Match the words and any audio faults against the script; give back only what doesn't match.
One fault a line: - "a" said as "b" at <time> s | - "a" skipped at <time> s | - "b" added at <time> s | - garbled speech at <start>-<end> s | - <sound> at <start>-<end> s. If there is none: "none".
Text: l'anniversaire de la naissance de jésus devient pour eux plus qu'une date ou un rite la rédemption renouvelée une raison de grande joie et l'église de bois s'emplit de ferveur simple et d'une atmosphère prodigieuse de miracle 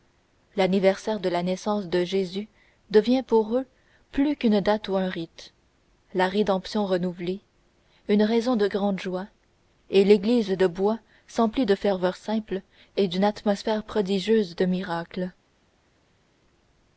none